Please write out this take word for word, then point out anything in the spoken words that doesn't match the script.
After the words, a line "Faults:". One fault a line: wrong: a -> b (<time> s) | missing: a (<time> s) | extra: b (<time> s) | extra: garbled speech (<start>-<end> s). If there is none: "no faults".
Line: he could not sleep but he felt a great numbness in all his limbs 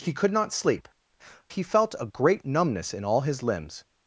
he could not sleep he felt a great numbness in all his limbs
Faults:
missing: but (0.9 s)